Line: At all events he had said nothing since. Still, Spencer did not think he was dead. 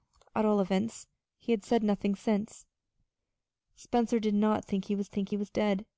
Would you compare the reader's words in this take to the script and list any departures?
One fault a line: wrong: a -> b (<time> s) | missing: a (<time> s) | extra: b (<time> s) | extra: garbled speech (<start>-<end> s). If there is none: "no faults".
missing: Still (2.6 s)
extra: think he was (5.1 s)